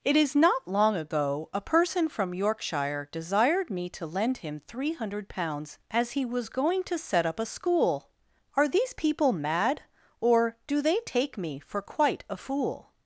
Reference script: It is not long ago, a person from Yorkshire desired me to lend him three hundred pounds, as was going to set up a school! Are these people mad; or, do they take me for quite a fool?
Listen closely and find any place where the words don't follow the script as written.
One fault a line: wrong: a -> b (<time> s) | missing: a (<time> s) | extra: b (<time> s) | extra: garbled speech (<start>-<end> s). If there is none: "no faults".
extra: he (6.1 s)